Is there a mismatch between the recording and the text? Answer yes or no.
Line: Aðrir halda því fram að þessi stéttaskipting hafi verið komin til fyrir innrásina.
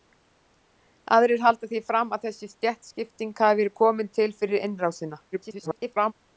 yes